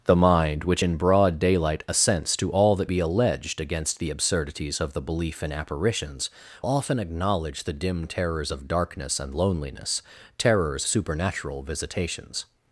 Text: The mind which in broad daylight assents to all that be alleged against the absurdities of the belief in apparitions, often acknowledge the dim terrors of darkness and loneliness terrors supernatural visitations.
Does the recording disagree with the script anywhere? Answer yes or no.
no